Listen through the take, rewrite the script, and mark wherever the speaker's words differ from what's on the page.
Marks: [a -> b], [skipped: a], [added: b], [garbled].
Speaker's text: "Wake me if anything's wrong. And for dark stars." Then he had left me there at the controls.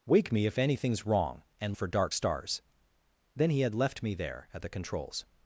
"Wake me if anything's wrong. And for dark stars." Then he had left me there at the controls.